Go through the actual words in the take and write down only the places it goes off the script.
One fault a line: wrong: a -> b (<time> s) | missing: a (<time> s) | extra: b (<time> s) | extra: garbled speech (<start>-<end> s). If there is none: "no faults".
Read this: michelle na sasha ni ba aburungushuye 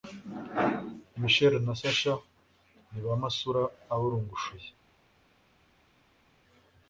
extra: masura (3.2 s)